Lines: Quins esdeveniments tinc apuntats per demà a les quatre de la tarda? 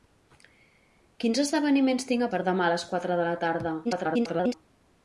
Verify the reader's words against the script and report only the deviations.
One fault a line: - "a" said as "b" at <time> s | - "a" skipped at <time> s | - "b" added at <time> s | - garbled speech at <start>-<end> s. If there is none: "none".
- "apuntats" skipped at 2.3 s
- garbled speech at 3.8-4.5 s